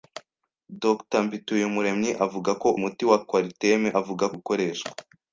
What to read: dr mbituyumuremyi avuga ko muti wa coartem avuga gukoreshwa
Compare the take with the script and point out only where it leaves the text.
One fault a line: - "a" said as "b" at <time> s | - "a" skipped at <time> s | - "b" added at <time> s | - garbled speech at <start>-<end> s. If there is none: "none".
none